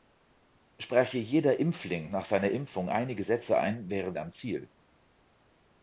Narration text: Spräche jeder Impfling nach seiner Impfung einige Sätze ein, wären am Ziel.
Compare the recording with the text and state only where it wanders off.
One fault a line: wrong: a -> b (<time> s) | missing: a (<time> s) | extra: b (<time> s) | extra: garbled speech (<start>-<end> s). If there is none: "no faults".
no faults